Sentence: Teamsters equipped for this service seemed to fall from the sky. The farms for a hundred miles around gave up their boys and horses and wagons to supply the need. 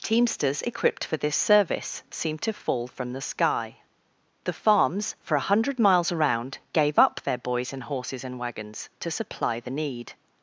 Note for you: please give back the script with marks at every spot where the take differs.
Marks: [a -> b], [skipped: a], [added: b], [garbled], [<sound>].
Teamsters equipped for this service seemed to fall from the sky. The farms for a hundred miles around gave up their boys and horses and wagons to supply the need.